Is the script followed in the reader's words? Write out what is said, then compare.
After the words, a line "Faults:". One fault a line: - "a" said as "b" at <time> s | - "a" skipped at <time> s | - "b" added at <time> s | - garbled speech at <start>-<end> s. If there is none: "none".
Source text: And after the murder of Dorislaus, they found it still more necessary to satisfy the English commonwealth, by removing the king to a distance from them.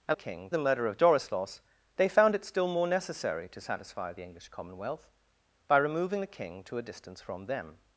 And king the murder of Dorislaus, they found it still more necessary to satisfy the English commonwealth, by removing the king to a distance from them.
Faults:
- "after" said as "king" at 0.1 s